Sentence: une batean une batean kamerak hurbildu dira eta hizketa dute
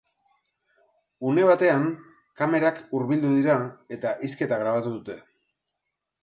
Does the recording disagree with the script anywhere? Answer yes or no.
yes